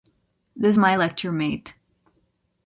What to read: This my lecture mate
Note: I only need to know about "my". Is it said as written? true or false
true